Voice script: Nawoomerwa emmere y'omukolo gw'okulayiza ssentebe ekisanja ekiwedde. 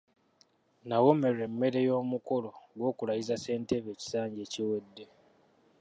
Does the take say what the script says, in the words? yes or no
yes